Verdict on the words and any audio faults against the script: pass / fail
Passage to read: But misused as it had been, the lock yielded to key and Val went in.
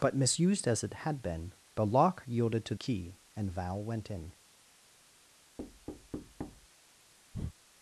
fail